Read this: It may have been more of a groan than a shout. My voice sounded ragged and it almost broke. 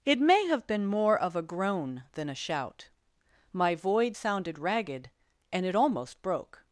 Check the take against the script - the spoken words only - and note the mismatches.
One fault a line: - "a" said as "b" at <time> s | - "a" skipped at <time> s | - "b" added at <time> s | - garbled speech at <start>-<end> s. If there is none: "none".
- "voice" said as "void" at 3.8 s